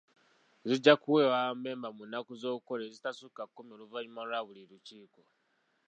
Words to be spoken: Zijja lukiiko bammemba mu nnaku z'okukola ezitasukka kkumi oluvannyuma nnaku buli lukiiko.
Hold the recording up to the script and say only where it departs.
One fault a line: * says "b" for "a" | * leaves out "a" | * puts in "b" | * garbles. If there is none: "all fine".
* says "kuweebwa" for "lukiiko"
* says "lwa" for "nnaku"